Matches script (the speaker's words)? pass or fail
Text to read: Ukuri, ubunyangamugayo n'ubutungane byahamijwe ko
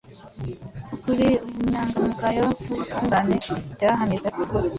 pass